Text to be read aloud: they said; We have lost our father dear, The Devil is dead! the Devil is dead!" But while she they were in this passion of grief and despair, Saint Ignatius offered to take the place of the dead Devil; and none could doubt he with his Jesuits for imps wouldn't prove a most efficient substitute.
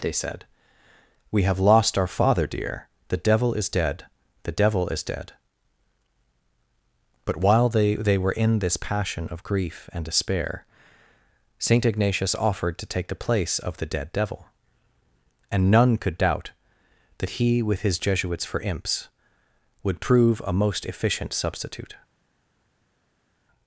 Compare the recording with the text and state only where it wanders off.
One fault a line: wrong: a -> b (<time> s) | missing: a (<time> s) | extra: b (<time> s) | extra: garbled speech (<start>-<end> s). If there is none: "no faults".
wrong: she -> they (7.7 s)
extra: that (17.2 s)
wrong: wouldn't -> would (19.8 s)